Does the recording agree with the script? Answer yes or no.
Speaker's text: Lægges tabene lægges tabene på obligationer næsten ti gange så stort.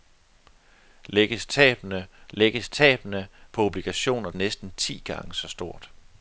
yes